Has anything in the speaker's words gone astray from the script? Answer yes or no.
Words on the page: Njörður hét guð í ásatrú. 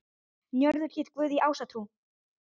no